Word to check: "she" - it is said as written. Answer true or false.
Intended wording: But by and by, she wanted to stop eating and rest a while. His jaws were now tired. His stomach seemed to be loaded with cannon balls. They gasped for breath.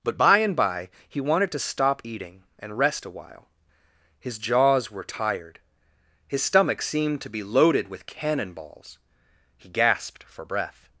false